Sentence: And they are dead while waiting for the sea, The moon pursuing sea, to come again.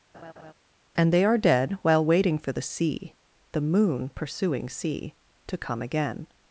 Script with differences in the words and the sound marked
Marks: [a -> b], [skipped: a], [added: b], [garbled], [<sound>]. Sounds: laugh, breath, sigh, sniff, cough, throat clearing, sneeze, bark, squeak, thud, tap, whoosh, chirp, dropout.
[laugh] And they are dead while waiting for the sea, The moon pursuing sea, to come again.